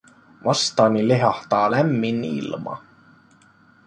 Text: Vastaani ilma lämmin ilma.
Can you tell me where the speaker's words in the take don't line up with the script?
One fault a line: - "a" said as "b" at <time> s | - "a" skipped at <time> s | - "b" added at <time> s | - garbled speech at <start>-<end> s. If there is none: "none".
- "ilma" said as "lehahtaa" at 1.1 s